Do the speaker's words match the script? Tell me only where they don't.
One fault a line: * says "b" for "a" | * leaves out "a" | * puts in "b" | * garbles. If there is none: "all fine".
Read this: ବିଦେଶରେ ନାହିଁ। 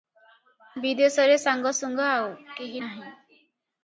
* puts in "ସାଙ୍ଗସୁଙ୍ଗା ଆଉ କେହି"